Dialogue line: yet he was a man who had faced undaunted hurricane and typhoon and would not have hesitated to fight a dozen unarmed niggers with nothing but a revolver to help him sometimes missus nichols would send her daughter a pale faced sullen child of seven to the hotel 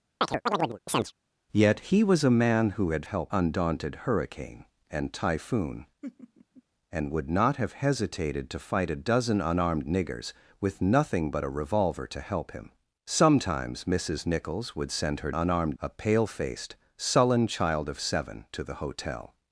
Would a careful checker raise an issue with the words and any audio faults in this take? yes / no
yes